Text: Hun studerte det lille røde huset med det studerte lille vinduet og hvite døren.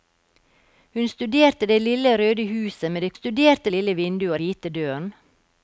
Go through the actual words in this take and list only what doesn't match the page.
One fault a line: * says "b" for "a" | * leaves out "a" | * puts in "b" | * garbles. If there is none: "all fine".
all fine